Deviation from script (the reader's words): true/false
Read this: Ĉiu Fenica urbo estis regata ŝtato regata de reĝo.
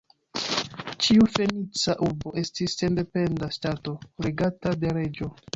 true